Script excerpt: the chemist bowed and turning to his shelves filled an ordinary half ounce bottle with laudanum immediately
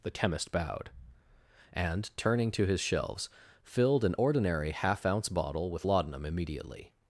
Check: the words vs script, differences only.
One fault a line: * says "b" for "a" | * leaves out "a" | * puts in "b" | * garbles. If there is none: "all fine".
all fine